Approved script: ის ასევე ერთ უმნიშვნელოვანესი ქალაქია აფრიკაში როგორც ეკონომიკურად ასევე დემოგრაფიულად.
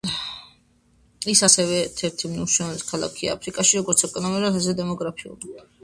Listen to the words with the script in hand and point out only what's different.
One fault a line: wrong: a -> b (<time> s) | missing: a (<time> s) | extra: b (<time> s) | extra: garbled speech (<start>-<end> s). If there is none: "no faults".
extra: ერთი (2.1 s)